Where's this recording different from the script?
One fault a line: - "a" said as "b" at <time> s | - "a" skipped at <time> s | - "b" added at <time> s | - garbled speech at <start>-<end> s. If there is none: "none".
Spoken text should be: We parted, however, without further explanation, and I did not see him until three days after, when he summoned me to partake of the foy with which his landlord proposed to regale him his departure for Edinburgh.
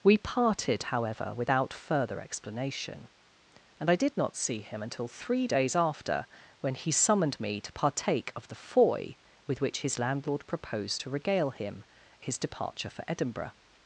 none